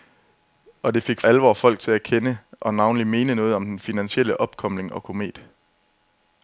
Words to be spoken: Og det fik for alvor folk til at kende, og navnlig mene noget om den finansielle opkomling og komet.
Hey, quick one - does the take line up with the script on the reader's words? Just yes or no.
no